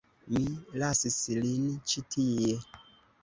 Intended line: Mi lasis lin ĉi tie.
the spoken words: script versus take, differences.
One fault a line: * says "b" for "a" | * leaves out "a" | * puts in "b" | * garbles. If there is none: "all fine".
all fine